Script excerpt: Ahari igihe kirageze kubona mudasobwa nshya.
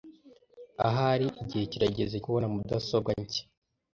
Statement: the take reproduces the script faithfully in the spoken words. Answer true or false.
true